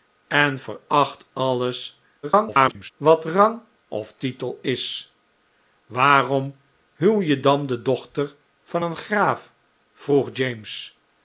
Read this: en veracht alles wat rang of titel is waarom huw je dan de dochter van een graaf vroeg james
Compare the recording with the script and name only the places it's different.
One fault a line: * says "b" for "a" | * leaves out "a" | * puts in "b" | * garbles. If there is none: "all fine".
* garbles